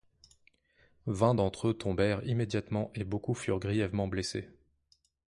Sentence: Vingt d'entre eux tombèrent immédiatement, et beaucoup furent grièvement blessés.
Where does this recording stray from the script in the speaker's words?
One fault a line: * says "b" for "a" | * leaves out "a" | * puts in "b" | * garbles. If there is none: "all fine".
all fine